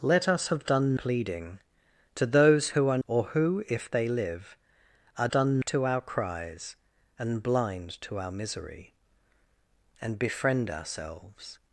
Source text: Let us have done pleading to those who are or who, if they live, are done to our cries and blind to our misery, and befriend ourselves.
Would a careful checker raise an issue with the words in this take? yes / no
no